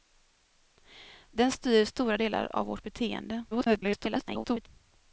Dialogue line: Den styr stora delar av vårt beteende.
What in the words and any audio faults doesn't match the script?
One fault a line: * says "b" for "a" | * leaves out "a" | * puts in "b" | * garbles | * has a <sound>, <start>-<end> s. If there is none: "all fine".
* garbles